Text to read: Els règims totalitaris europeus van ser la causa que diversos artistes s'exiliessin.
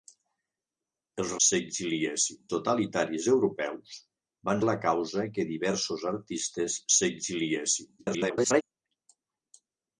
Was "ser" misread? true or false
true